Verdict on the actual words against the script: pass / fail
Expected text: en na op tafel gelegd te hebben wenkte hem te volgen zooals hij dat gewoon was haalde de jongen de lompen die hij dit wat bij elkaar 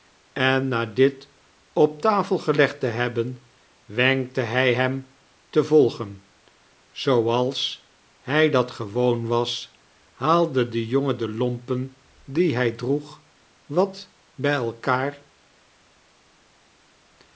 fail